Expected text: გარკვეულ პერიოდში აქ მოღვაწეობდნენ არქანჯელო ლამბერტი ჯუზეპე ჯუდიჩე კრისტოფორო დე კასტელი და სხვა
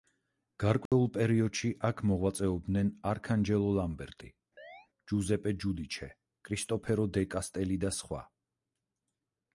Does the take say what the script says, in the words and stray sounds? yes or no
no